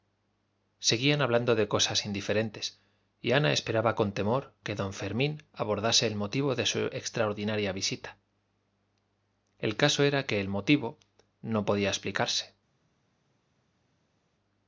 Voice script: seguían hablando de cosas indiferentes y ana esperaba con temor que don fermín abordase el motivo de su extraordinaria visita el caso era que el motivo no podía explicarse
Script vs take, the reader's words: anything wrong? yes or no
no